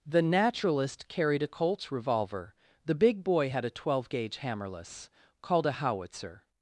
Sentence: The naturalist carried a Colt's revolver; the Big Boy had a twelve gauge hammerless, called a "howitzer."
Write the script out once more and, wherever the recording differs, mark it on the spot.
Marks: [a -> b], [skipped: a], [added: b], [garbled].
The naturalist carried a Colt's revolver; the Big Boy had a twelve gauge hammerless, called a "howitzer."